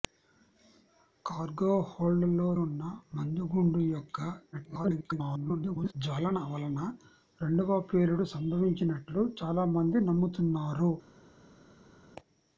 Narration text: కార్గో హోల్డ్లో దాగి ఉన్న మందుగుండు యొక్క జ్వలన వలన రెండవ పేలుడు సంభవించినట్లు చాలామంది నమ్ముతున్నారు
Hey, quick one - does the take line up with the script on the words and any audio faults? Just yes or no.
no